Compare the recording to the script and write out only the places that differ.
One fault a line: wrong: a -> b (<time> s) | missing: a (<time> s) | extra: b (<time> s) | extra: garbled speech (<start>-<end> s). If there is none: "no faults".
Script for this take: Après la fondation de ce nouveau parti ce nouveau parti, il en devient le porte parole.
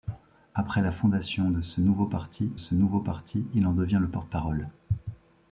no faults